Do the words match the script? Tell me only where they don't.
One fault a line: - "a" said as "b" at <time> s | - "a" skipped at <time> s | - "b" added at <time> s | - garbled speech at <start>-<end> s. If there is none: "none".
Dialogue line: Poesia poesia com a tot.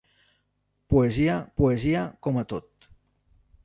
none